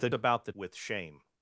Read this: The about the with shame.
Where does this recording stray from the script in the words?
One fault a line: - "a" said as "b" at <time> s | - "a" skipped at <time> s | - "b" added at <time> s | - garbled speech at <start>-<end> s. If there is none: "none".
none